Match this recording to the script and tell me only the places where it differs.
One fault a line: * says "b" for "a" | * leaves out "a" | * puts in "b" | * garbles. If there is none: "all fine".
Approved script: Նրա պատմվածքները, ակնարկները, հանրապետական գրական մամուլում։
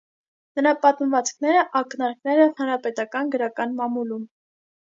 all fine